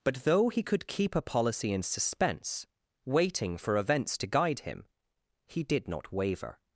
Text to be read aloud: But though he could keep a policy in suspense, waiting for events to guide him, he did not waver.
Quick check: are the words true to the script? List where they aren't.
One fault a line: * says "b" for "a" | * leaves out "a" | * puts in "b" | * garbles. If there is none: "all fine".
all fine